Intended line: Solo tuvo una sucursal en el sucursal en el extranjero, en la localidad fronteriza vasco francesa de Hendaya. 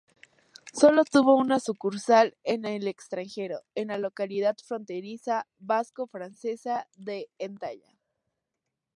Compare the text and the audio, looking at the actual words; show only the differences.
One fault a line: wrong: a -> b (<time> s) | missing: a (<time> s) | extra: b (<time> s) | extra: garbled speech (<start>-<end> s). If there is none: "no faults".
missing: sucursal en el (2.9 s)